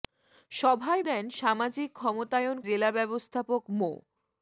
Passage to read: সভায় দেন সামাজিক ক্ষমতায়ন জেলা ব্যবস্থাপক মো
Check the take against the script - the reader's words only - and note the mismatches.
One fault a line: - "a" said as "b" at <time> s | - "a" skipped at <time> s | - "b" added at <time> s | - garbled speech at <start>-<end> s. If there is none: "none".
none